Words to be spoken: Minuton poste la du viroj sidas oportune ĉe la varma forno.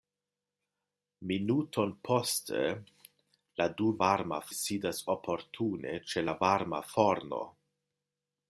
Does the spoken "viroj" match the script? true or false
false